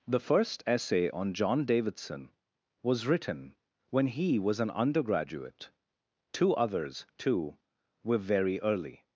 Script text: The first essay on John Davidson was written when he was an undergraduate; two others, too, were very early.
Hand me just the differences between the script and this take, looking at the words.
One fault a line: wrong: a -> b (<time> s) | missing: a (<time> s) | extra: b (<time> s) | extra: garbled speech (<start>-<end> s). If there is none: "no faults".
no faults